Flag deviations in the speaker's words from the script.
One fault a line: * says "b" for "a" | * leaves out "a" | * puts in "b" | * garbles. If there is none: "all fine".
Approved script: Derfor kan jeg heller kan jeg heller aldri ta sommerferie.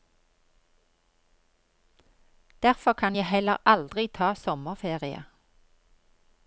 * leaves out "kan jeg heller"